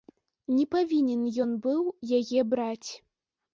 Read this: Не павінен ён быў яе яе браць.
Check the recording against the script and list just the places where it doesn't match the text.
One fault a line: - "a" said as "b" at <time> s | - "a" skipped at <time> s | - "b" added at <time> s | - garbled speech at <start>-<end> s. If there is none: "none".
- "яе" skipped at 2.5 s